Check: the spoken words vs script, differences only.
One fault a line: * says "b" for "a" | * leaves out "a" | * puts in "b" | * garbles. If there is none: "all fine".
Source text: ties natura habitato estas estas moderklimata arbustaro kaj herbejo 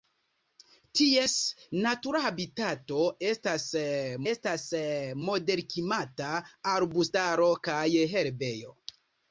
all fine